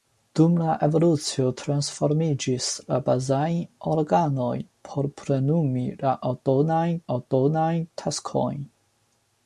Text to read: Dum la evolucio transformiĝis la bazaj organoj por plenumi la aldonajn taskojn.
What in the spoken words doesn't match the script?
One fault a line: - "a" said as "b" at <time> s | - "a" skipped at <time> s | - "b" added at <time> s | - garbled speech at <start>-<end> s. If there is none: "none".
- "aldonajn" added at 7.2 s